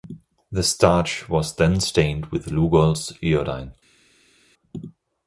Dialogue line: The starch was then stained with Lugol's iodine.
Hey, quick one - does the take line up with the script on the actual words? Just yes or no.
yes